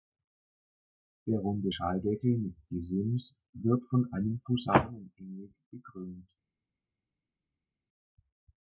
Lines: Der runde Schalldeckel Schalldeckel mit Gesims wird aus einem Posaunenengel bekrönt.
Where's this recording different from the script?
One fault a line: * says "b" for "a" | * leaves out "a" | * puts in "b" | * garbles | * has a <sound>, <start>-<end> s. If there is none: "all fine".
* leaves out "Schalldeckel"
* says "von" for "aus"